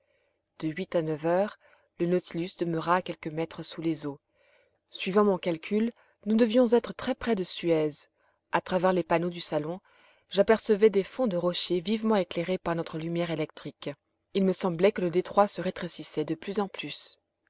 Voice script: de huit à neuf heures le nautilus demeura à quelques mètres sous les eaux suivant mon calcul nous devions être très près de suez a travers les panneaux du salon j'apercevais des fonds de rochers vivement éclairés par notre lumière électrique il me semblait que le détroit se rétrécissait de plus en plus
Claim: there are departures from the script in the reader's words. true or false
false